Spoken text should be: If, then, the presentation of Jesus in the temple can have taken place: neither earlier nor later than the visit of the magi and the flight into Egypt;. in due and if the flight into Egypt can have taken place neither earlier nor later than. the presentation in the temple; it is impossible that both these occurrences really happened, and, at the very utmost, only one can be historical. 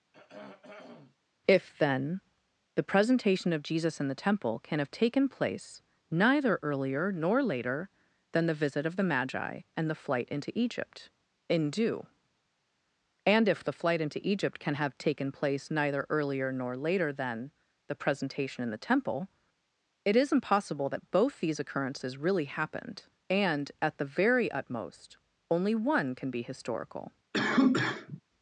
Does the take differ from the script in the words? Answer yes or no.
no